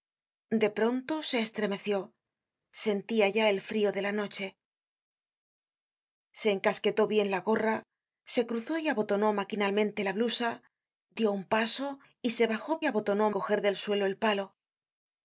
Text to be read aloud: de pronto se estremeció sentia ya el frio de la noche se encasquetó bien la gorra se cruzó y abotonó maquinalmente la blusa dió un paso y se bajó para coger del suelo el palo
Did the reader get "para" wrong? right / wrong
wrong